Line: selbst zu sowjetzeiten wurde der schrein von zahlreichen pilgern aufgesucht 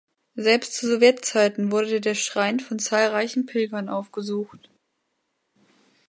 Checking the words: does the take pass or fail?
pass